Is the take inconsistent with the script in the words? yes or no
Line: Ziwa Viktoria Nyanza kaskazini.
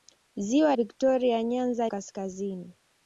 no